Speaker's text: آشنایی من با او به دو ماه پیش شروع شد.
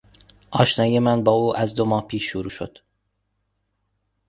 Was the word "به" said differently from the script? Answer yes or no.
yes